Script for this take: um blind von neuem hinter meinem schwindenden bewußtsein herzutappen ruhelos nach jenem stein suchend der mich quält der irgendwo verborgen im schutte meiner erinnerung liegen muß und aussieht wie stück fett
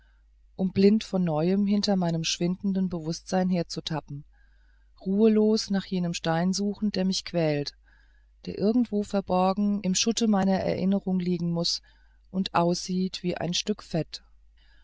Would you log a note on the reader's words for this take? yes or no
yes